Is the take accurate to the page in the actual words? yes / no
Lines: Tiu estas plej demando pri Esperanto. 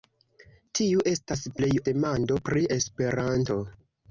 yes